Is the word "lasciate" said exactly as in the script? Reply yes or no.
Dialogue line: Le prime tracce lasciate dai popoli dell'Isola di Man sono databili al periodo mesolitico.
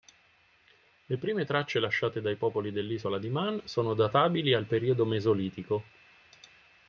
yes